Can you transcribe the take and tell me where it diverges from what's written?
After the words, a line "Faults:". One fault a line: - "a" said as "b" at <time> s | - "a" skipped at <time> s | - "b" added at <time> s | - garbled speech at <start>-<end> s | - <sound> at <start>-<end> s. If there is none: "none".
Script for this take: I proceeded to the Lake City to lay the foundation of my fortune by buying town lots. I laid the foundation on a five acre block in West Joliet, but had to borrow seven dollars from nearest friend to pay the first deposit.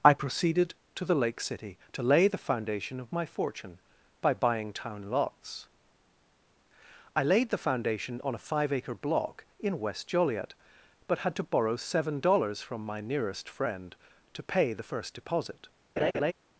I proceeded to the Lake City to lay the foundation of my fortune by buying town lots. I laid the foundation on a five acre block in West Joliet, but had to borrow seven dollars from my nearest friend to pay the first deposit.
Faults:
- "my" added at 12.8 s
- laugh at 16.0-16.3 s